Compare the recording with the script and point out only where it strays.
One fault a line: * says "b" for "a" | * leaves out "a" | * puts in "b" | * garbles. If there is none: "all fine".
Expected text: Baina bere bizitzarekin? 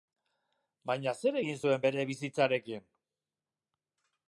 * puts in "zer egin zuen"